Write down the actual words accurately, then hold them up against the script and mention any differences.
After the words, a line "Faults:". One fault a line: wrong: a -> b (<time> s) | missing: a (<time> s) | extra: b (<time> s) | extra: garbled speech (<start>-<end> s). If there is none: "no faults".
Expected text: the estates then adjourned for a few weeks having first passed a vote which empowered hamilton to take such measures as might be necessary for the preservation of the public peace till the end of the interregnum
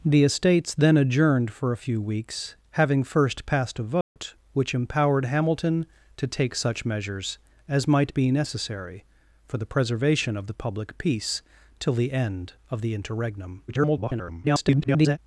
the estates then adjourned for a few weeks having first passed a vote which empowered hamilton to take such measures as might be necessary for the preservation of the public peace till the end of the interregnum [garbled]
Faults:
extra: garbled speech (13.7-15.2 s)